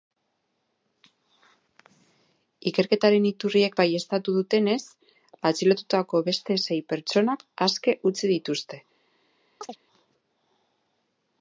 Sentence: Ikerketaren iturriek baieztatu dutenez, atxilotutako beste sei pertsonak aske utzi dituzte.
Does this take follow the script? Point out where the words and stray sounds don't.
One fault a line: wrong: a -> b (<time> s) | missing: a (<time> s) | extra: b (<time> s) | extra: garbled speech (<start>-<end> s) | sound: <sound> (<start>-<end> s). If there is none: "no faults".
sound: chirp (9.6-9.8 s)